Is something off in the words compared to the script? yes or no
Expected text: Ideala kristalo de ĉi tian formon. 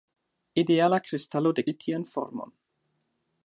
no